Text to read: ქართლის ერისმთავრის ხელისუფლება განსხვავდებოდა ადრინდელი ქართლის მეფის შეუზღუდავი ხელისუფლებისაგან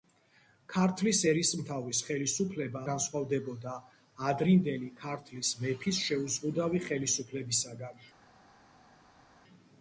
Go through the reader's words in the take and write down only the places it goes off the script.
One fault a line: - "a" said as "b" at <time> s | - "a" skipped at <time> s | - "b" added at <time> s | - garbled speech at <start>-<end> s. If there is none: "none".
none